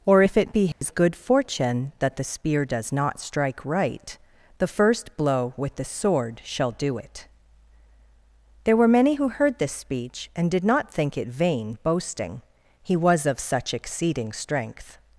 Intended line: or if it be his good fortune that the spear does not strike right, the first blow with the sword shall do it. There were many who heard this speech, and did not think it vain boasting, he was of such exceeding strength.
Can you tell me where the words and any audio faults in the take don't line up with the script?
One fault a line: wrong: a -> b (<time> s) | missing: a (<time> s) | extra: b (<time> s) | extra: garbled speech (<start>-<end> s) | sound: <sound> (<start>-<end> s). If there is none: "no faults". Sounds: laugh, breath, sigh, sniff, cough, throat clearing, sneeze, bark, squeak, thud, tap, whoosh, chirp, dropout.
sound: dropout (0.7-0.8 s)